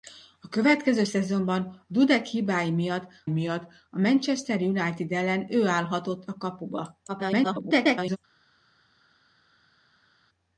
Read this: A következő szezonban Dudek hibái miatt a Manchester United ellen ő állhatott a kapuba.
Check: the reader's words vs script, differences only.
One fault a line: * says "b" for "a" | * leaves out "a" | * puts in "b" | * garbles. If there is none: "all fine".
* puts in "miatt"
* garbles